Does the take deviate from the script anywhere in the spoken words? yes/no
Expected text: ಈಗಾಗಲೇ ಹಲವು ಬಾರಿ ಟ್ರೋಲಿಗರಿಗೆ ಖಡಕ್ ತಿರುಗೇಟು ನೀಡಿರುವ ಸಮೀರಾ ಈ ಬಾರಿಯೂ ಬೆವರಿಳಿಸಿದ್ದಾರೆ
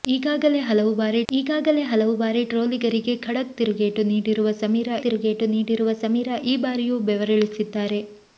yes